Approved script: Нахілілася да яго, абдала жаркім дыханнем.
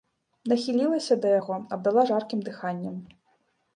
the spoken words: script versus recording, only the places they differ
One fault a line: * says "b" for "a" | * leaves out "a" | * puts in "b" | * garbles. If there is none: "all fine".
all fine